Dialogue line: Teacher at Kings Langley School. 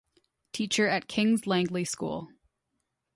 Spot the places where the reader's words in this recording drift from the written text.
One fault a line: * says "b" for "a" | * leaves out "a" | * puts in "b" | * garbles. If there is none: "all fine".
all fine